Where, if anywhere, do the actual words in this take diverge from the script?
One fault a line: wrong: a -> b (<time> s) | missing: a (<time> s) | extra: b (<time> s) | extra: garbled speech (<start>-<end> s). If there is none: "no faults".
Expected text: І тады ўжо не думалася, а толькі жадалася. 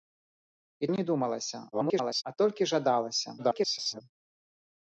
missing: тады ўжо (0.9 s)
extra: garbled speech (1.7-2.2 s)
extra: garbled speech (3.4-4.0 s)